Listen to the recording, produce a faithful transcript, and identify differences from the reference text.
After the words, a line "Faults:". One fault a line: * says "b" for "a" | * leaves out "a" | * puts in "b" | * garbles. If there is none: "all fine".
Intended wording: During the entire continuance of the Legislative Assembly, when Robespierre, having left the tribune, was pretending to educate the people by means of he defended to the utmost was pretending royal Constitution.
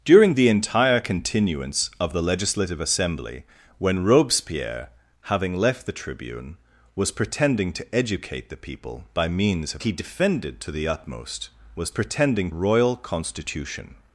During the entire continuance of the Legislative Assembly, when Robespierre, having left the tribune, was pretending to educate the people by means of he defended to the utmost was pretending royal Constitution.
Faults:
all fine